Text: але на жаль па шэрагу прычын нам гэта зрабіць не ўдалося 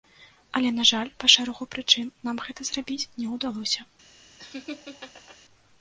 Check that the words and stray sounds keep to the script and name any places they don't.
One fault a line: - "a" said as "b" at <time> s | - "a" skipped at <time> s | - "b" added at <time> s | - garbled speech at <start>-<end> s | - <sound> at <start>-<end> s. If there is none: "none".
- laugh at 4.4-5.4 s